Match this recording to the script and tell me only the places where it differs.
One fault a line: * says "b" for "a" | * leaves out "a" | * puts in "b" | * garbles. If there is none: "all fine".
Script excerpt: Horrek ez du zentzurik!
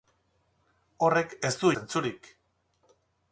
all fine